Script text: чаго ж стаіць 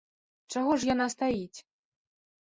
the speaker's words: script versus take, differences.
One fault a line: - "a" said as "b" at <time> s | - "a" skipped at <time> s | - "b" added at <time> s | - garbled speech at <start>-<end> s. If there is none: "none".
- "яна" added at 0.9 s